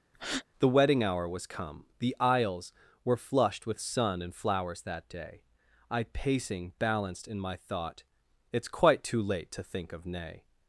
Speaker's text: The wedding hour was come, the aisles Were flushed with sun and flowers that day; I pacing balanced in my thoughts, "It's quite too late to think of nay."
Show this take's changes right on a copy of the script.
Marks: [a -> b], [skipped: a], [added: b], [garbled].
The wedding hour was come, the aisles Were flushed with sun and flowers that day; I pacing balanced in my [thoughts, -> thought] "It's quite too late to think of nay."